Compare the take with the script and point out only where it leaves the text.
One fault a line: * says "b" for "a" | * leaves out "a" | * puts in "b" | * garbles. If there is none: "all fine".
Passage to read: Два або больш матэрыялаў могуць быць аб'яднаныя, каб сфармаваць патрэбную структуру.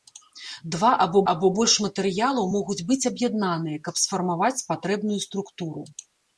* puts in "або"